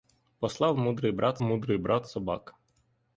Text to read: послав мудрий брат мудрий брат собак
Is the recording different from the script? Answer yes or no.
no